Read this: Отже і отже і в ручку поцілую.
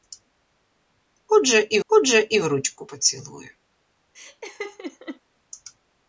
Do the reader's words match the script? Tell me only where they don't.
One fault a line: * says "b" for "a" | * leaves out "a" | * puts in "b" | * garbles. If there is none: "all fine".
all fine